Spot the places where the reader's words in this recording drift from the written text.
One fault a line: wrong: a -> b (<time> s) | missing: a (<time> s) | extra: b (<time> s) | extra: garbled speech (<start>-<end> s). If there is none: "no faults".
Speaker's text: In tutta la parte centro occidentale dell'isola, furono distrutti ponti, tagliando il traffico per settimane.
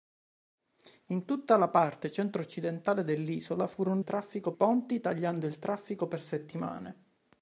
wrong: distrutti -> traffico (4.0 s)